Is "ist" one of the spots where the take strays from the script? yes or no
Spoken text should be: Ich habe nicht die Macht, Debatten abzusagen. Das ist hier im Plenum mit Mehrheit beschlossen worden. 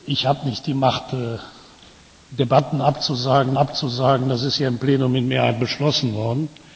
no